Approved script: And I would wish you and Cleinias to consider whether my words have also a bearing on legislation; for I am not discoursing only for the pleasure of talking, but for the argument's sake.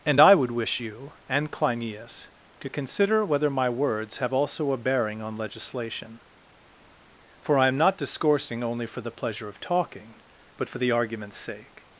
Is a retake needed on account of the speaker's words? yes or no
no